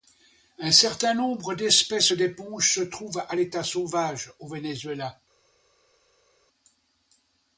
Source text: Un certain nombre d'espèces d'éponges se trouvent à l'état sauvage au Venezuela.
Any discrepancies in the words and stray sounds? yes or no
no